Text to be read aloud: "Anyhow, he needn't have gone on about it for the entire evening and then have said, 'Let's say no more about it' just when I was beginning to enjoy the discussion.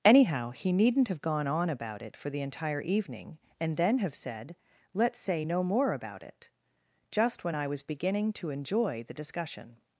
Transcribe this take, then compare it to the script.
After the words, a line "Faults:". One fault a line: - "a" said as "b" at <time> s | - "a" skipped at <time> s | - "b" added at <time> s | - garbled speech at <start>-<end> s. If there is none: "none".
"Anyhow, he needn't have gone on about it for the entire evening and then have said, 'Let's say no more about it' just when I was beginning to enjoy the discussion.
Faults:
none